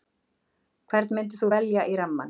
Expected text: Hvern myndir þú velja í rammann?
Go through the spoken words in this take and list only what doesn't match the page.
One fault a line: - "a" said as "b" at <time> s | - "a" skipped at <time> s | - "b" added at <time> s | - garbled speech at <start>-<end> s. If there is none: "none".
none